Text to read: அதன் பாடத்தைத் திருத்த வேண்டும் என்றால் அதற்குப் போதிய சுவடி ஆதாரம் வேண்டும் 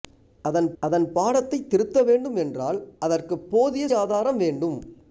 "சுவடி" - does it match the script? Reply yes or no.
no